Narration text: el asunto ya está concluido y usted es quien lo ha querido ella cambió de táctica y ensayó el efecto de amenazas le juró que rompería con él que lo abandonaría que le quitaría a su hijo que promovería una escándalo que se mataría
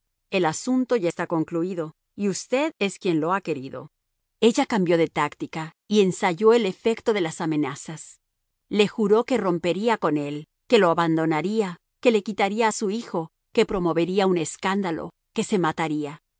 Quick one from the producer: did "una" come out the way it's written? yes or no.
no